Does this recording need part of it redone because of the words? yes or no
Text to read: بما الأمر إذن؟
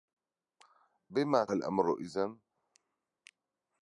no